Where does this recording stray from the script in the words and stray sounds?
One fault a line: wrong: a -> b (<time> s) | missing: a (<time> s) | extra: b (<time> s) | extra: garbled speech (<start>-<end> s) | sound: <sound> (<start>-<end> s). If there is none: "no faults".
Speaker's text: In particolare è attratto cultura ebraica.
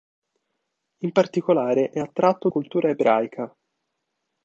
no faults